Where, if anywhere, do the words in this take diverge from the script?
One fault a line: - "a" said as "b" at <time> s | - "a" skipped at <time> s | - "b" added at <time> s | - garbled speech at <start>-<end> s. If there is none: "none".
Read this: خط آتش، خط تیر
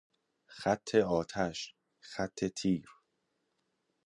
none